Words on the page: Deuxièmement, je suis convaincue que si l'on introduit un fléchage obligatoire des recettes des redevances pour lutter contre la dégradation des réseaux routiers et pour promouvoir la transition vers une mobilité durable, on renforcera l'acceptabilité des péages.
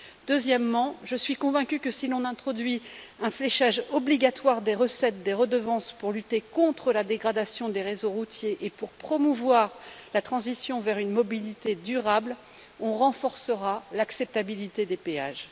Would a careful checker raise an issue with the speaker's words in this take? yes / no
no